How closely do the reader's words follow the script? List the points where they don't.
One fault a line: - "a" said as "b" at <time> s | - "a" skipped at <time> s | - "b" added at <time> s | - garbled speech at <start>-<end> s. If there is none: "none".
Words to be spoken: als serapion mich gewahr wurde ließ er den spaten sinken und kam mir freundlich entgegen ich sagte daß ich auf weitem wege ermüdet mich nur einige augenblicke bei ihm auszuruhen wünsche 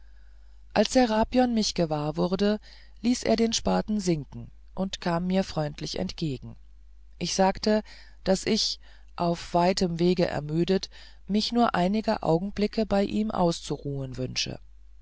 none